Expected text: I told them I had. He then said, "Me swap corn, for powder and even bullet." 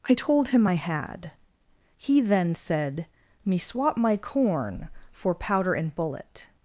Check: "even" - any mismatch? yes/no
yes